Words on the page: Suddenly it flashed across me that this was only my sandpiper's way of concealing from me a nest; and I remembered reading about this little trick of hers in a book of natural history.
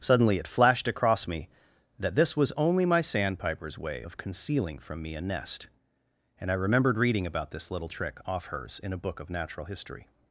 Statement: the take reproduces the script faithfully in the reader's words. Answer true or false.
false